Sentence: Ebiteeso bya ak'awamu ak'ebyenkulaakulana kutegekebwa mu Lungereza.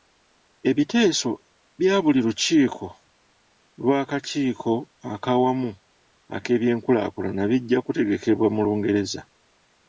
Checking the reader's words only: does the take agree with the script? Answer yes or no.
no